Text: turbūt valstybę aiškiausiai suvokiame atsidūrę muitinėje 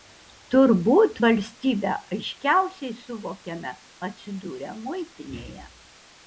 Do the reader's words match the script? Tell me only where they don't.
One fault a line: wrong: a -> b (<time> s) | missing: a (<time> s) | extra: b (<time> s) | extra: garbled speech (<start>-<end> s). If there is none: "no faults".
no faults